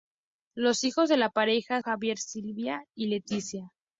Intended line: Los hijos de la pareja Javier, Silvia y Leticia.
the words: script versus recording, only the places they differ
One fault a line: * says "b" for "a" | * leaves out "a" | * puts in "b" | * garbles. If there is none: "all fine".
all fine